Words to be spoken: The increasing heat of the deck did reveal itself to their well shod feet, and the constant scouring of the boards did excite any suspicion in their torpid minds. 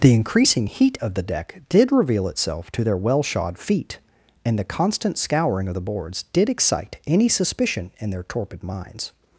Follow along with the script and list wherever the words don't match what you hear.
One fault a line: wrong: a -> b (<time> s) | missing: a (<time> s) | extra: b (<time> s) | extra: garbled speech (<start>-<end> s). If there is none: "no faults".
no faults